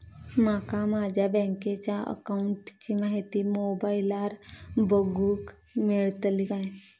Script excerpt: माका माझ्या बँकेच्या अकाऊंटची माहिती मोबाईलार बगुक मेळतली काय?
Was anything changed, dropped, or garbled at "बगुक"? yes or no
no